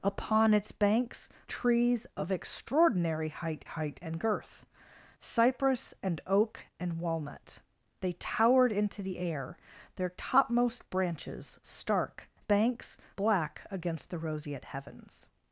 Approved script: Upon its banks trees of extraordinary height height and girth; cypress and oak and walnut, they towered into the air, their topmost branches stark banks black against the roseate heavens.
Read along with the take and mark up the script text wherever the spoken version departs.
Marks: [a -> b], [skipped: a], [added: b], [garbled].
Upon its banks trees of extraordinary height height and girth; cypress and oak and walnut, they towered into the air, their topmost branches stark banks black against the roseate heavens.